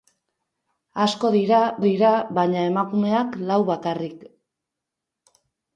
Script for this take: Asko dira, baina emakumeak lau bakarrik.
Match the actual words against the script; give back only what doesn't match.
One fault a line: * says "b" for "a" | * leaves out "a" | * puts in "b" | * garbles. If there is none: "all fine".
* puts in "dira"